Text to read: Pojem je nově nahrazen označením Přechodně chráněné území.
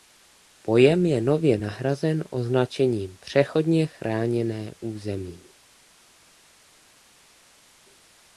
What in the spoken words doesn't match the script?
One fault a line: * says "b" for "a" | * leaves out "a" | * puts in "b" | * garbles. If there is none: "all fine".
all fine